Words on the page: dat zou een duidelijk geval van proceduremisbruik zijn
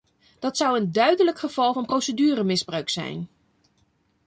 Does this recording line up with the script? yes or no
yes